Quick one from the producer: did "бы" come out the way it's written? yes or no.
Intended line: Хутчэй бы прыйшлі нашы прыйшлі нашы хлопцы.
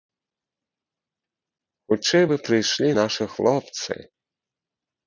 yes